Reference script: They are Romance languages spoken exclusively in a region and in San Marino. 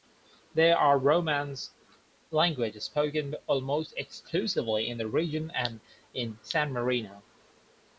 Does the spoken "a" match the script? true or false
false